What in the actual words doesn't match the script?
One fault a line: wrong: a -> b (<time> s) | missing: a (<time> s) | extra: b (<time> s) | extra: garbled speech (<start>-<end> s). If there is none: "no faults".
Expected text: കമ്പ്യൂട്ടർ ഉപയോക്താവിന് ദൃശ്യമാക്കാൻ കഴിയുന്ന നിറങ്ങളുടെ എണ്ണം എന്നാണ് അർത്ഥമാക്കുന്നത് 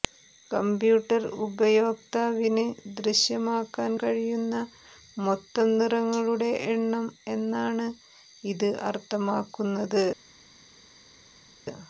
extra: മൊത്തം (5.2 s)
extra: ഇത് (8.4 s)